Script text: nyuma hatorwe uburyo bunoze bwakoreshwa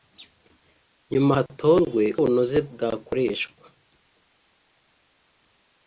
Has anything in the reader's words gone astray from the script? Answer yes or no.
yes